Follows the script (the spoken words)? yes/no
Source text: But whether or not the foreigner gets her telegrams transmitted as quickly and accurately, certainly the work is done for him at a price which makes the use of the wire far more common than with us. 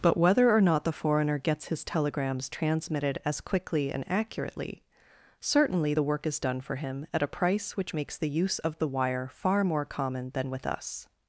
no